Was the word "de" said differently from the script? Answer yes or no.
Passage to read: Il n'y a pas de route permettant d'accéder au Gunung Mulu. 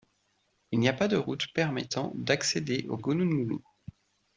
no